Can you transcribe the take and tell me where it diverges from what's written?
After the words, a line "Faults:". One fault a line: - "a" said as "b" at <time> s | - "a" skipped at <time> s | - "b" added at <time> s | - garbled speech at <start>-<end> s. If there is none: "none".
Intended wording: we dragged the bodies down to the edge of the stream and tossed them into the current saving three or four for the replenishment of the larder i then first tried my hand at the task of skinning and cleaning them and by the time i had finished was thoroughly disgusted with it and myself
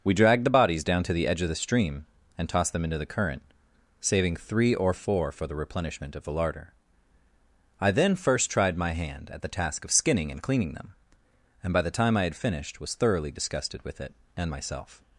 we dragged the bodies down to the edge of the stream and tossed them into the current saving three or four for the replenishment of the larder i then first tried my hand at the task of skinning and cleaning them and by the time i had finished was thoroughly disgusted with it and myself
Faults:
none